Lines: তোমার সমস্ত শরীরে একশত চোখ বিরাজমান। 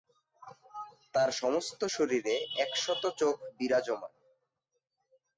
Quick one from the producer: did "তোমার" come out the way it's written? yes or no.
no